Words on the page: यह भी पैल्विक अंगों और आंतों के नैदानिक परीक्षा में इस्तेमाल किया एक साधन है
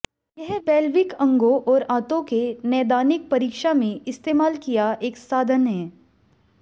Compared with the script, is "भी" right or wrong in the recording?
wrong